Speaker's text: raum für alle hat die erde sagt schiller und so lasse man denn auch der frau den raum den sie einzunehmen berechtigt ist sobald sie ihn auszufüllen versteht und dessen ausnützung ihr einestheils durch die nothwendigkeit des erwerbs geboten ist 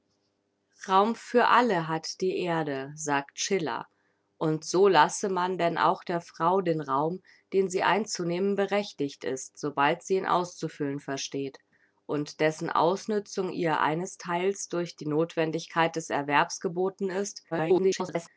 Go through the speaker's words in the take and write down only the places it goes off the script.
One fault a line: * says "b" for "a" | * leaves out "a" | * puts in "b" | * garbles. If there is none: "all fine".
* garbles